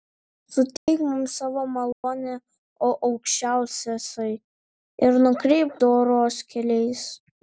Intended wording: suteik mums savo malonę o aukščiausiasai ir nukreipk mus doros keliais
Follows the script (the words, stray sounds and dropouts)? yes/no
no